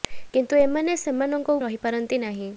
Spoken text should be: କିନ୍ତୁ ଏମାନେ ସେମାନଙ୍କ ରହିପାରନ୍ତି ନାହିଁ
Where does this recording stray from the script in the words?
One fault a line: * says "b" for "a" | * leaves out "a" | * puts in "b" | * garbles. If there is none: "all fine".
all fine